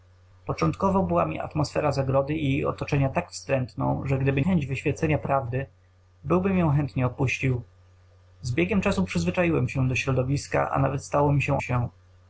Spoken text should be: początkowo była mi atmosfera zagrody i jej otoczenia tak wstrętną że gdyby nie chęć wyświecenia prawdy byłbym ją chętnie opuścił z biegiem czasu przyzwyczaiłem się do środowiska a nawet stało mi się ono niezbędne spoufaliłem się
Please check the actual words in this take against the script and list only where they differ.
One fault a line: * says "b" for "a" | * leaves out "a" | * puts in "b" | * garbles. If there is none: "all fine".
* leaves out "nie"
* leaves out "ono niezbędne spoufaliłem"